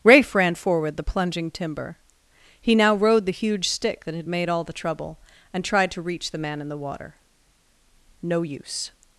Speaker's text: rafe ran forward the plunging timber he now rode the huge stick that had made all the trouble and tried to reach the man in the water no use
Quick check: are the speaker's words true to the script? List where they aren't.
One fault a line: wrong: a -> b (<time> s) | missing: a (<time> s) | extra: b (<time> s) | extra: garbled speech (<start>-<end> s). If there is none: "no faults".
no faults